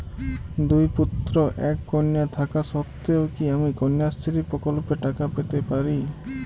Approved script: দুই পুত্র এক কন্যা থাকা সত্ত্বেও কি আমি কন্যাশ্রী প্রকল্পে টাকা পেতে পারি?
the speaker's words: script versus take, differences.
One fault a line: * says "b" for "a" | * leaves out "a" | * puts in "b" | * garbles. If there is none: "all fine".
all fine